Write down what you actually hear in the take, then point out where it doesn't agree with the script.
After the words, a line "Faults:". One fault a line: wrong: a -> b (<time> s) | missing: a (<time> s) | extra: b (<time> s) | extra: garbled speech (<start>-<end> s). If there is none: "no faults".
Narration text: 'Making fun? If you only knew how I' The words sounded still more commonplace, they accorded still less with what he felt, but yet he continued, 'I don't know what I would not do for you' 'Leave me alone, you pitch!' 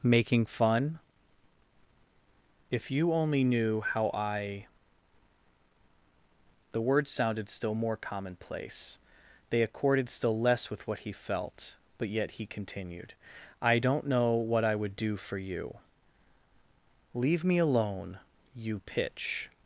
'Making fun? If you only knew how I' The words sounded still more commonplace, they accorded still less with what he felt, but yet he continued, 'I don't know what I would do for you' 'Leave me alone, you pitch!'
Faults:
missing: not (14.9 s)